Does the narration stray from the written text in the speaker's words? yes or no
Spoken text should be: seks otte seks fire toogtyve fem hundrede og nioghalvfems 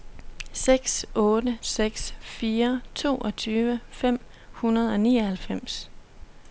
no